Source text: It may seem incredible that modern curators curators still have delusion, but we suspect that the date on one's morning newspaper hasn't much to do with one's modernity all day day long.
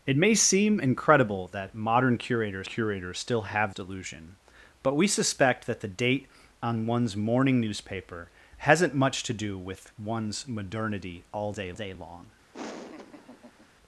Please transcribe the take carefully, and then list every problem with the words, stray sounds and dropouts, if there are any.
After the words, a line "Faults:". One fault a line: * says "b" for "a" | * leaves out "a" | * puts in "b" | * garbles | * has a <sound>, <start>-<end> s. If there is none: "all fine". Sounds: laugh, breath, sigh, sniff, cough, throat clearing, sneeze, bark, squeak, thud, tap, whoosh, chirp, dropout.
It may seem incredible that modern curators curators still have delusion, but we suspect that the date on one's morning newspaper hasn't much to do with one's modernity all day day long.
Faults:
* has a laugh, 12.5-13.7 s